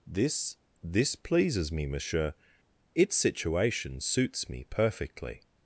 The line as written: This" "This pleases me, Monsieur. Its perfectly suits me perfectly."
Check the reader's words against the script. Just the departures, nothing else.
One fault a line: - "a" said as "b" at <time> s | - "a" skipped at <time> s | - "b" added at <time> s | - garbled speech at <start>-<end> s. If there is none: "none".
- "perfectly" said as "situation" at 3.1 s